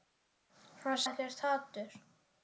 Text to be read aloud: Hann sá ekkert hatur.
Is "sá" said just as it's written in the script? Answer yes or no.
no